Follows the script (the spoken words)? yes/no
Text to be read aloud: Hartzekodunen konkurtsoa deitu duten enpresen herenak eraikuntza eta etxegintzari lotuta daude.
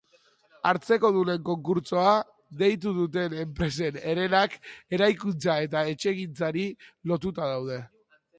yes